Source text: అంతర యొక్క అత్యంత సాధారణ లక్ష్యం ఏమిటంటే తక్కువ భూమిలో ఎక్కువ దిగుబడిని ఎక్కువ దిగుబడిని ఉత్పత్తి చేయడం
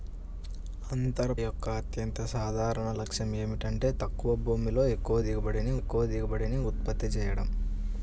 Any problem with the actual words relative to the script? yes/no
no